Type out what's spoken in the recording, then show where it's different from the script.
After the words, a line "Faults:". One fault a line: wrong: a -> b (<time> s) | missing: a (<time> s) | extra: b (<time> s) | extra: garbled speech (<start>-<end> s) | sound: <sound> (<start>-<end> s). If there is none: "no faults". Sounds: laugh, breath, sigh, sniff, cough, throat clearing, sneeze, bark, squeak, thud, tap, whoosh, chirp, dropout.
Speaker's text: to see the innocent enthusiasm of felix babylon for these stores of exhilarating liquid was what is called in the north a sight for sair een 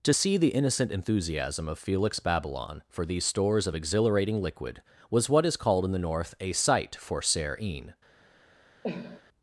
to see the innocent enthusiasm of felix babylon for these stores of exhilarating liquid was what is called in the north a sight for sair een
Faults:
sound: cough (8.8-9.2 s)